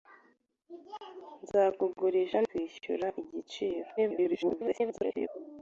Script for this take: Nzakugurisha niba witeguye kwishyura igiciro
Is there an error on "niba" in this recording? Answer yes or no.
yes